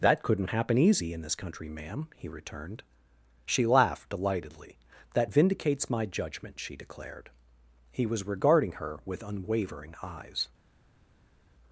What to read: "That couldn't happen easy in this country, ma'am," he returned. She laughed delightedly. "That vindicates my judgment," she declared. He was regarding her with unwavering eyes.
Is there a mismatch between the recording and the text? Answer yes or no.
no